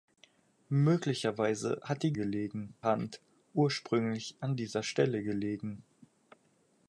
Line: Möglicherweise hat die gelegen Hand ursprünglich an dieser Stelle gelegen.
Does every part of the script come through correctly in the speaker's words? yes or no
yes